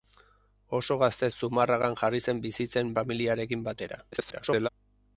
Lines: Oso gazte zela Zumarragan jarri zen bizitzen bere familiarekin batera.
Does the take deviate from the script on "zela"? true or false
true